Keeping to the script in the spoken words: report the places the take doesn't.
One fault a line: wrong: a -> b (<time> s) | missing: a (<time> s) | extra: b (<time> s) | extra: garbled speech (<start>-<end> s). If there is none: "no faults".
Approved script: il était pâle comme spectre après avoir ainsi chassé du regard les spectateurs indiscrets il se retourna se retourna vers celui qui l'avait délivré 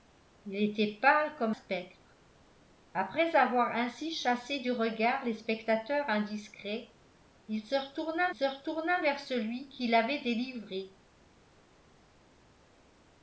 no faults